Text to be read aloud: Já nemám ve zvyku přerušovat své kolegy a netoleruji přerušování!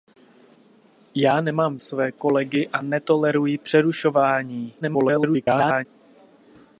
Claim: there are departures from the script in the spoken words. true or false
true